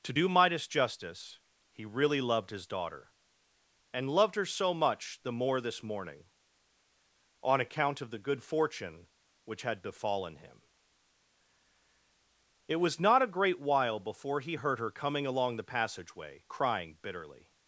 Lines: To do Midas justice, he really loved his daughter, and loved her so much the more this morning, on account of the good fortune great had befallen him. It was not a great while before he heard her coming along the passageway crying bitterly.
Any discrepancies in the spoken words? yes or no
yes